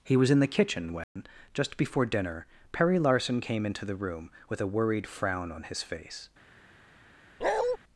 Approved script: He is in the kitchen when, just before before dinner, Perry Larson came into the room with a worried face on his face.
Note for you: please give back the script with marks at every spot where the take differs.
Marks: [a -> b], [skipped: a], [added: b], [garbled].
He [is -> was] in the kitchen when, just before [skipped: before] dinner, Perry Larson came into the room with a worried [face -> frown] on his face.